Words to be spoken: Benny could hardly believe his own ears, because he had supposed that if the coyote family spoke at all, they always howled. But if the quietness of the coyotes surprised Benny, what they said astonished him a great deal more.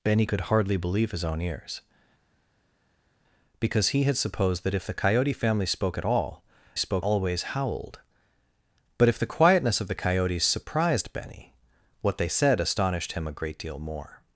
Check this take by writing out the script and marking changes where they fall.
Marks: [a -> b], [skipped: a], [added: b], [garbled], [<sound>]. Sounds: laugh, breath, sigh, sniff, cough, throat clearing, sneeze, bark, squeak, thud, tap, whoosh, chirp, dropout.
Benny could hardly believe his own ears, because he had supposed that if the coyote family spoke at all, [they -> spoke] always howled. But if the quietness of the coyotes surprised Benny, what they said astonished him a great deal more.